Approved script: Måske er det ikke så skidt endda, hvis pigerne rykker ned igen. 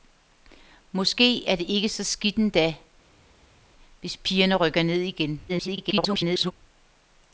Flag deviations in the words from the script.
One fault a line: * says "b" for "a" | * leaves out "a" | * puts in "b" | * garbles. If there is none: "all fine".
* garbles